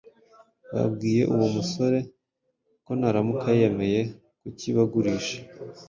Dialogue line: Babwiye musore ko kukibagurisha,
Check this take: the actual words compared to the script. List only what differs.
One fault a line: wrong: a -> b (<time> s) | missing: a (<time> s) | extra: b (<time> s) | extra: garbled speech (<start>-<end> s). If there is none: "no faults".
extra: uwo (1.3 s)
extra: naramuka yemeye (3.0 s)